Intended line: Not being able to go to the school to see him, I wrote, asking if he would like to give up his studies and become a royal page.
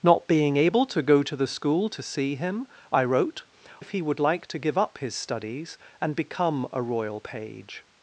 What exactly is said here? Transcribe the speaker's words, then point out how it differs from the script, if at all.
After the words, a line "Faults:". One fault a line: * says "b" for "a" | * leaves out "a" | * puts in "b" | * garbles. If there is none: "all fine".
Not being able to go to the school to see him, I wrote, if he would like to give up his studies and become a royal page.
Faults:
* leaves out "asking"